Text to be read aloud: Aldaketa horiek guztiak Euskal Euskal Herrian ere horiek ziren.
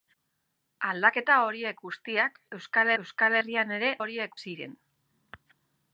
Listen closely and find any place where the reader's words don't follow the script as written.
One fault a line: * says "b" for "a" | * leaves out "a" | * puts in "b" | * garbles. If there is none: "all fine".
all fine